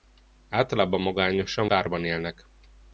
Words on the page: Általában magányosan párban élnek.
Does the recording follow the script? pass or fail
pass